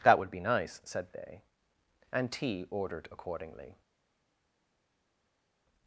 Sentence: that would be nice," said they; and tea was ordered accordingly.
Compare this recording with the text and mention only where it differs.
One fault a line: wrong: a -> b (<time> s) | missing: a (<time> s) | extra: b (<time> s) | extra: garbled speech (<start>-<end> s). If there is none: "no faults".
missing: was (2.6 s)